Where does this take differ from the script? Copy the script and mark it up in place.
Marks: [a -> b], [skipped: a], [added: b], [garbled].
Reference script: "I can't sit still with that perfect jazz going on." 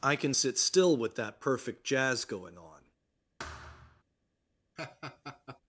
"I [can't -> can] sit still with that perfect jazz going on."